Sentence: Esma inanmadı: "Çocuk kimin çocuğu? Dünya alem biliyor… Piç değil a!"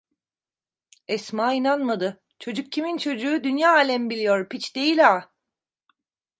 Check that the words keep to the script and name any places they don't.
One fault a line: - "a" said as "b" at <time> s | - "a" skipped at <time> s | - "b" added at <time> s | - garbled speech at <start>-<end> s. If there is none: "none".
none